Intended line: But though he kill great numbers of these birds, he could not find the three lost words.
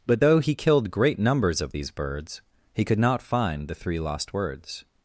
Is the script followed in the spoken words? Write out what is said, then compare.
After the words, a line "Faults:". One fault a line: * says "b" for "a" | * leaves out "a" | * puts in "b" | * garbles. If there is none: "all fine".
But though he killed great numbers of these birds, he could not find the three lost words.
Faults:
* says "killed" for "kill"